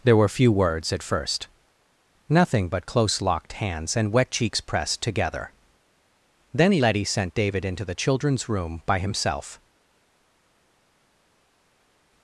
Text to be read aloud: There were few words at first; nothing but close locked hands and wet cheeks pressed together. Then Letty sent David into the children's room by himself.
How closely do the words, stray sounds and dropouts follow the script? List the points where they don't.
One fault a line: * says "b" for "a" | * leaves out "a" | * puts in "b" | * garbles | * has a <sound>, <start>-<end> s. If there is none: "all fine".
all fine